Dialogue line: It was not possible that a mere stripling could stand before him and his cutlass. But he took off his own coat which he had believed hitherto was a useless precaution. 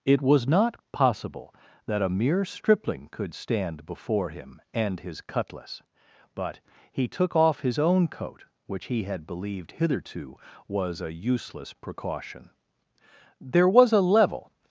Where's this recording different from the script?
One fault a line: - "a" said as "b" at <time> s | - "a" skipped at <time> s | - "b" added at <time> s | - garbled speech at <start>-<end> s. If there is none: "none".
- "There was a level" added at 13.4 s